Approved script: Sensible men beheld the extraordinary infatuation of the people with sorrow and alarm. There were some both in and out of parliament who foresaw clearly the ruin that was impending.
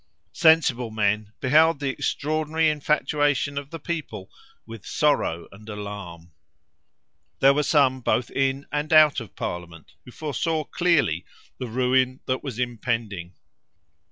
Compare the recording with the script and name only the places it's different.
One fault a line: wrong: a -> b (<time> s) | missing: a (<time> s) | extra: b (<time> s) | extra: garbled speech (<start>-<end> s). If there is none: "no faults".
no faults